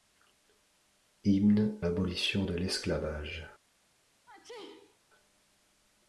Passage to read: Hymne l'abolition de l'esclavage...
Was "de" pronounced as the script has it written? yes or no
yes